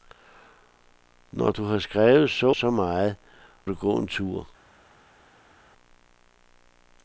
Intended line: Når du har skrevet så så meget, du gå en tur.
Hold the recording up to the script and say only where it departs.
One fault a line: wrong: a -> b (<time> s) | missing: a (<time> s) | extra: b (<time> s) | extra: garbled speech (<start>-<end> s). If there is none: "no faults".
no faults